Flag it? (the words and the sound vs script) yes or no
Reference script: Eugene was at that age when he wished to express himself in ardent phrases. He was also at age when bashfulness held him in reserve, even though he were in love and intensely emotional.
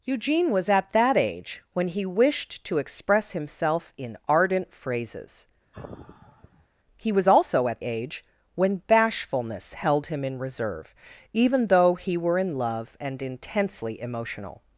yes